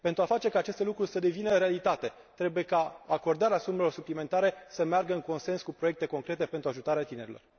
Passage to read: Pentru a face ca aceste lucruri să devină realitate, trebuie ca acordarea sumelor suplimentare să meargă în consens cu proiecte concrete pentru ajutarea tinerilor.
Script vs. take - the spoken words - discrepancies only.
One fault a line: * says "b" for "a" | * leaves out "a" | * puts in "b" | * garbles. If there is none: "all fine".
all fine